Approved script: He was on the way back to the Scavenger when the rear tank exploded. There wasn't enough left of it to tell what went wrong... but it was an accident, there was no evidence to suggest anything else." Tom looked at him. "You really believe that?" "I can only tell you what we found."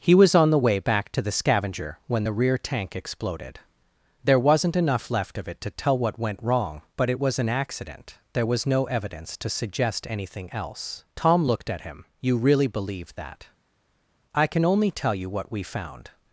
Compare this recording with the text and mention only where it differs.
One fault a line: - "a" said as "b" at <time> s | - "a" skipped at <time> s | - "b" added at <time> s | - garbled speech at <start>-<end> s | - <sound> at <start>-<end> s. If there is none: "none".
none